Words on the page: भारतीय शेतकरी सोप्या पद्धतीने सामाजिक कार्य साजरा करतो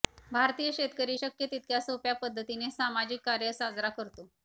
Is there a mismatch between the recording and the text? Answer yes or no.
yes